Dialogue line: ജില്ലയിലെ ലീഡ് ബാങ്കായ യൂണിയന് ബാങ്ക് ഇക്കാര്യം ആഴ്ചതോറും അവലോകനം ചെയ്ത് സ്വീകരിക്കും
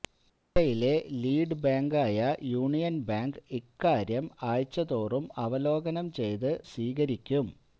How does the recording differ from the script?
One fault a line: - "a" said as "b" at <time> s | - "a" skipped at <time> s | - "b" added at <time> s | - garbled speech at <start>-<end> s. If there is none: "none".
none